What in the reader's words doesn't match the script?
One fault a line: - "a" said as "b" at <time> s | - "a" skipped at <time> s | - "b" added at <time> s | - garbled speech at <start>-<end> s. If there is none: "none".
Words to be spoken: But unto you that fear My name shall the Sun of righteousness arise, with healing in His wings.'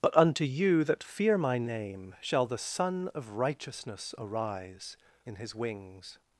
- "with healing" skipped at 5.0 s